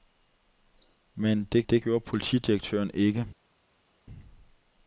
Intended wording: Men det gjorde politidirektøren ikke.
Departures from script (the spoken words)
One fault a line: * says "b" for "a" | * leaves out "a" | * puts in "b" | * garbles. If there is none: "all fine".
* puts in "det"